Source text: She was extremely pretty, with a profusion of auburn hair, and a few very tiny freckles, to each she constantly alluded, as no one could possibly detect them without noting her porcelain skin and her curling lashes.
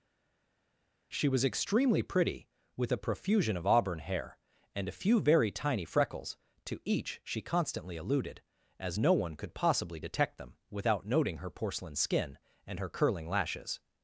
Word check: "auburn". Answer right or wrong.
right